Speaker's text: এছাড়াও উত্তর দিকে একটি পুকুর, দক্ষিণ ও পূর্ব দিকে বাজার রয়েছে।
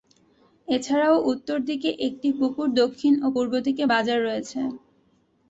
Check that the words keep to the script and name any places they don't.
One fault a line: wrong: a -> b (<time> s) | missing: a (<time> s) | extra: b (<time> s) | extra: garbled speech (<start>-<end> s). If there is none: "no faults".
no faults